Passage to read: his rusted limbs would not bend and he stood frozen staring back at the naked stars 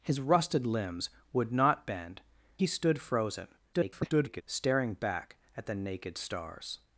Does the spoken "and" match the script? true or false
false